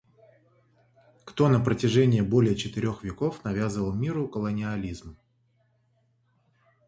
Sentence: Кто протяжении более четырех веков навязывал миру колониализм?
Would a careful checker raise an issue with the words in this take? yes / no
yes